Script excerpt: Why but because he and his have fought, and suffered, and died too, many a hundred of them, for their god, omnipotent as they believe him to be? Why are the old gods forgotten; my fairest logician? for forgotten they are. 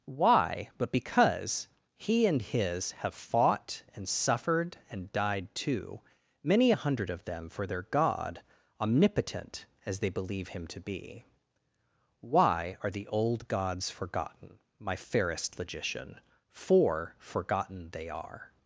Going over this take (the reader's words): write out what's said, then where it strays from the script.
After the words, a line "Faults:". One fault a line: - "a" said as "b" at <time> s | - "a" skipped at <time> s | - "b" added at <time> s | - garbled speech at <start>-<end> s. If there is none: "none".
Why but because he and his have fought, and suffered, and died too, many a hundred of them, for their god, omnipotent as they believe him to be? Why are the old gods forgotten; my fairest logician? for forgotten they are.
Faults:
none